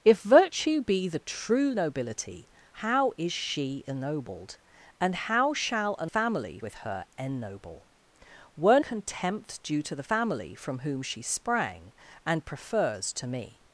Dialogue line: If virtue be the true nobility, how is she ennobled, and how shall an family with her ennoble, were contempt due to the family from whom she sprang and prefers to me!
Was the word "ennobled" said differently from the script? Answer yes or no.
no